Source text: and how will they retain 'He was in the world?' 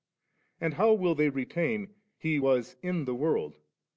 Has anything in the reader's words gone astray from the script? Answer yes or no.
no